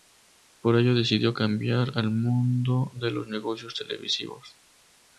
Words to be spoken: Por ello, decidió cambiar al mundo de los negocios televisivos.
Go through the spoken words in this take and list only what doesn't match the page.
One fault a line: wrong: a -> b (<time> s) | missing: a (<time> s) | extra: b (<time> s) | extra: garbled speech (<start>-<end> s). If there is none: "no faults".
no faults